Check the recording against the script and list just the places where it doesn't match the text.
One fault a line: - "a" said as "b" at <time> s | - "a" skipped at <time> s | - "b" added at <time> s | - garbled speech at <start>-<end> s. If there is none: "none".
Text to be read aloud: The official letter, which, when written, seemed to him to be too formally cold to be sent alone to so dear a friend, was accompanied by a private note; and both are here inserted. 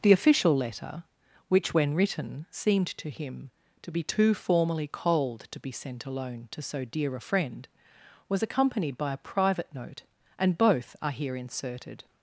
none